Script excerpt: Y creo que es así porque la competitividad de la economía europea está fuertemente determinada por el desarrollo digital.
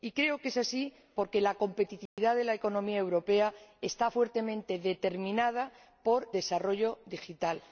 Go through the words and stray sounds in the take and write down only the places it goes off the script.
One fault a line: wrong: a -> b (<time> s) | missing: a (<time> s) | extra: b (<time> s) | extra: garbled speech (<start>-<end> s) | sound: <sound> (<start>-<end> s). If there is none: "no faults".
sound: dropout (2.1-2.2 s)
missing: el (6.3 s)